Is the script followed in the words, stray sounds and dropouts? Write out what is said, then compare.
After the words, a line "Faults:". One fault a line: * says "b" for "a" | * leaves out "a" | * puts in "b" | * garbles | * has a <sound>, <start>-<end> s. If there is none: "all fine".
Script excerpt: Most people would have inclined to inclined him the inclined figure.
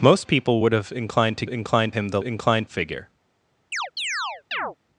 Most people would have inclined to inclined him the inclined figure.
Faults:
* has a chirp, 3.7-4.8 s